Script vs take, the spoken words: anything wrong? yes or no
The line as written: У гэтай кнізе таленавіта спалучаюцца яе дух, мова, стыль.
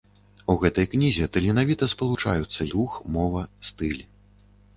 yes